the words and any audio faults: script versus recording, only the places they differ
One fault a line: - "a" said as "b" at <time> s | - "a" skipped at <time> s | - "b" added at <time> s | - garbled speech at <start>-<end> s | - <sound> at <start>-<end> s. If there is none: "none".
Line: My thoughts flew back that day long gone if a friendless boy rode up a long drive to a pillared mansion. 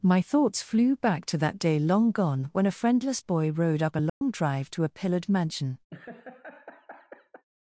- "to" added at 1.3 s
- "if" said as "when" at 2.5 s
- dropout at 4.1-4.2 s
- laugh at 5.9-7.4 s